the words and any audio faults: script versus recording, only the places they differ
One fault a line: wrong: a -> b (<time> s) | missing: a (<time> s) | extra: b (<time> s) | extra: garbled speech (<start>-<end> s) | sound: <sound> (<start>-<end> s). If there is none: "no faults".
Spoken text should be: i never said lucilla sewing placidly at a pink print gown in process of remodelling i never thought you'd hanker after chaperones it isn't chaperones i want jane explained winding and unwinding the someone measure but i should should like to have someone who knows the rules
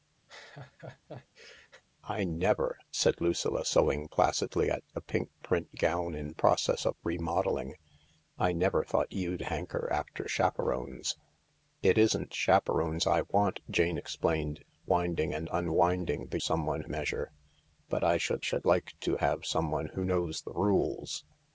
sound: laugh (0.3-1.8 s)